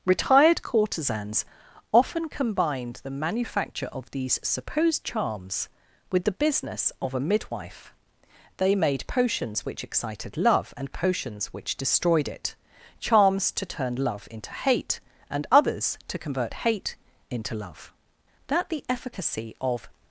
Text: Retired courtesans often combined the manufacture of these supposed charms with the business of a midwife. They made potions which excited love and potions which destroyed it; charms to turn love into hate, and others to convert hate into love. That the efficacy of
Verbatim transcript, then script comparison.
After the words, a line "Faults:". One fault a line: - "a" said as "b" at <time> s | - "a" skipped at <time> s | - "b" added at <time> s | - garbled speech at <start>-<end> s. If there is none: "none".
Retired courtesans often combined the manufacture of these supposed charms with the business of a midwife. They made potions which excited love and potions which destroyed it; charms to turn love into hate, and others to convert hate into love. That the efficacy of
Faults:
none